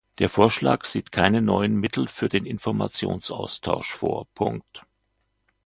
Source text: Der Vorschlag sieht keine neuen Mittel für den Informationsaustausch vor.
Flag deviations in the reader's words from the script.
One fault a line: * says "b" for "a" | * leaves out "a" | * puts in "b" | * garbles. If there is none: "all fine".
all fine